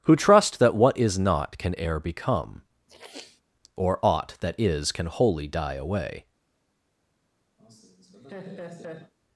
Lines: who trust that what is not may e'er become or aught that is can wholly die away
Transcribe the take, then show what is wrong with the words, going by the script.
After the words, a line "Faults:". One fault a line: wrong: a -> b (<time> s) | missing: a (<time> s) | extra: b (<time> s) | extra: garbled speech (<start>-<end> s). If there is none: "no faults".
who trust that what is not can e'er become or aught that is can wholly die away
Faults:
wrong: may -> can (1.6 s)